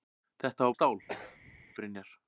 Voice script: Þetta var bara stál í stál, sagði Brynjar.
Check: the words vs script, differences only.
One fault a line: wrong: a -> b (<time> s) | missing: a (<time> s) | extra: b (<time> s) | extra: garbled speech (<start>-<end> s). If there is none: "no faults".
missing: bara stál (0.8 s)
missing: sagði (0.9 s)